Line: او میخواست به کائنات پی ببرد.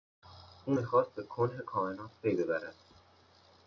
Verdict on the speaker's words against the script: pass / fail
fail